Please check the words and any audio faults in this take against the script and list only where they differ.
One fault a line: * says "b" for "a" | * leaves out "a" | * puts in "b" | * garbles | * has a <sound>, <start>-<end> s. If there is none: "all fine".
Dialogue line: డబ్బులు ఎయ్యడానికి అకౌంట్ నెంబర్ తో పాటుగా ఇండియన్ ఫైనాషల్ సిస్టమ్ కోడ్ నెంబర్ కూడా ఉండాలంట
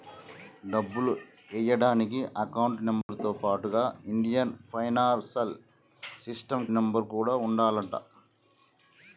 * has a dropout, 3.0-3.1 s
* leaves out "కోడ్"